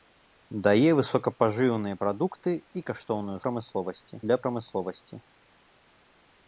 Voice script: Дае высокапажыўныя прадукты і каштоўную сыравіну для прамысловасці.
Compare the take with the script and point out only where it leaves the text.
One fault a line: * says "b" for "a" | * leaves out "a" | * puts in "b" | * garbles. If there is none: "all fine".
* says "прамысловасці" for "сыравіну"